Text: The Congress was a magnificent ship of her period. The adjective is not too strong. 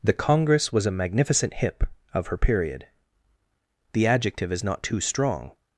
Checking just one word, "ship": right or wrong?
wrong